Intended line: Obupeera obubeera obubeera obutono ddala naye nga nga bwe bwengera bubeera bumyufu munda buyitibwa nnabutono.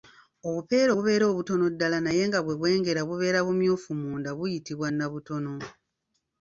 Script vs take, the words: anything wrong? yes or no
yes